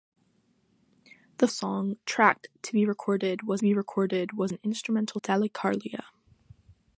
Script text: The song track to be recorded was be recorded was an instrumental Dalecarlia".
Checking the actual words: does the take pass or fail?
pass